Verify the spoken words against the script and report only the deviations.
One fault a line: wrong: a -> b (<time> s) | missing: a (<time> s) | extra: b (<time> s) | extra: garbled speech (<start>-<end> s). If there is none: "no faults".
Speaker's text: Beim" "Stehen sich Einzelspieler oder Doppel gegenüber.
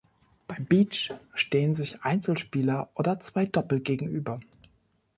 extra: Beach (0.7 s)
extra: zwei (3.2 s)